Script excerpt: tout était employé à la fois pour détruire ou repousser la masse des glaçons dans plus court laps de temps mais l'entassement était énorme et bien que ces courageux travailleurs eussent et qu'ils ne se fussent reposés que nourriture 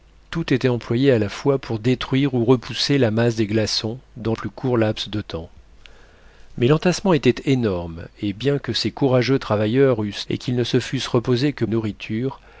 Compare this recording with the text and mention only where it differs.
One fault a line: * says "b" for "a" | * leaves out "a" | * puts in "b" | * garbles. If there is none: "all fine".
all fine